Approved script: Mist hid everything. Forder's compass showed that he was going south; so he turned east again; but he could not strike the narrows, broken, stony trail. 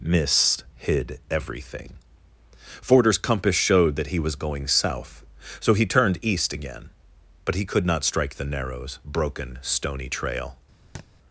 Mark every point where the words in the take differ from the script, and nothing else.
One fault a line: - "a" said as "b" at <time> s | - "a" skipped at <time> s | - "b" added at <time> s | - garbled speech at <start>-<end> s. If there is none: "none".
none